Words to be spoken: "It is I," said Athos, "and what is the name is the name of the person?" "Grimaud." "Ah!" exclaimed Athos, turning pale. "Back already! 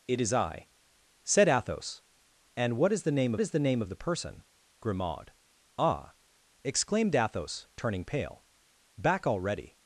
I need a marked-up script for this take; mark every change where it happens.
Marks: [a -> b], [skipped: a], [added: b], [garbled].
"It is I," said Athos, "and what is the name is the name of the person?" "Grimaud." "Ah!" exclaimed Athos, turning pale. "Back already!